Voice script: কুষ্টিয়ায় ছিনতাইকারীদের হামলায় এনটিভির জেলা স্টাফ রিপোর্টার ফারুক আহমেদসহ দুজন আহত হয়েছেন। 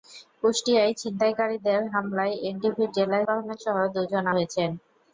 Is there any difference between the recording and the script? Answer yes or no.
yes